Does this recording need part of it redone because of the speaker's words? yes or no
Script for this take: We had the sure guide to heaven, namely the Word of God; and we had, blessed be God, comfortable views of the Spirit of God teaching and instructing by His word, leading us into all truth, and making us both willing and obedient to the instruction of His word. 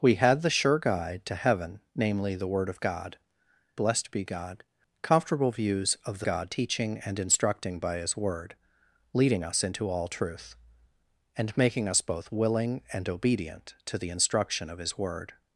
yes